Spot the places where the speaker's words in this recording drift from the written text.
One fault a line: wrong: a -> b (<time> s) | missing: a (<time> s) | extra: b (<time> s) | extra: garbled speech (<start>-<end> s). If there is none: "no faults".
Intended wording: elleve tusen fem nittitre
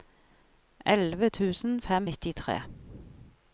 no faults